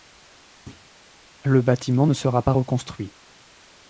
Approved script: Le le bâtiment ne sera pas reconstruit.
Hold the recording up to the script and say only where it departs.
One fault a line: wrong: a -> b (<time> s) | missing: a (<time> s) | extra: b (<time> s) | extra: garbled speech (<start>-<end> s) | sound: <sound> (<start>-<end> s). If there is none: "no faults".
sound: thud (0.7-0.9 s)
missing: le (1.6 s)